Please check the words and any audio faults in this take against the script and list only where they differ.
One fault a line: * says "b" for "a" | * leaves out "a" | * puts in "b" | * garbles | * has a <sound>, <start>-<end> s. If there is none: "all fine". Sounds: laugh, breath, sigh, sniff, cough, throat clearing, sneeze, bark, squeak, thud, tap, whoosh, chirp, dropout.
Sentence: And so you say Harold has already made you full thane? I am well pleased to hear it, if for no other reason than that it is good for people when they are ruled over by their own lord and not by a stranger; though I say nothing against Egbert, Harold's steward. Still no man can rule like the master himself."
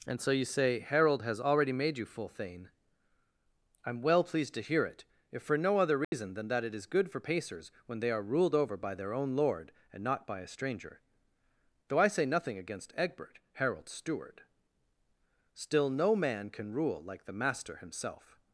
* has a dropout, 6.0-6.1 s
* says "pacers" for "people"